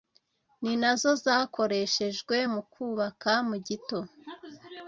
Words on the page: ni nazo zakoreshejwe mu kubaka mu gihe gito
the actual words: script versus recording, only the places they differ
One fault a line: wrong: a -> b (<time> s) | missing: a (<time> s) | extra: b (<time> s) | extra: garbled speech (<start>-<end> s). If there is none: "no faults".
missing: gihe (3.6 s)